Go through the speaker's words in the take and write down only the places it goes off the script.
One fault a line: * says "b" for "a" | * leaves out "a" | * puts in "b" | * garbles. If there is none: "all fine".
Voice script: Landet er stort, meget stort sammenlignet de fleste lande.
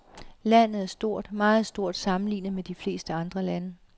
* puts in "med"
* puts in "andre"